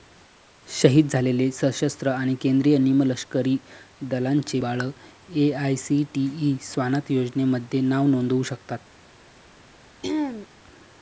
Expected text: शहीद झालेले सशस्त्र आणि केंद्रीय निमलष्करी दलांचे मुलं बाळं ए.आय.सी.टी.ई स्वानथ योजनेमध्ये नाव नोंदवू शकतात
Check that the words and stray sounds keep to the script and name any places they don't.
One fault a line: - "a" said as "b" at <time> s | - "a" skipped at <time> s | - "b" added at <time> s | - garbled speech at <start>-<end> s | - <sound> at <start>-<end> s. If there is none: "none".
- "मुलं" skipped at 4.6 s
- throat clearing at 10.0-10.5 s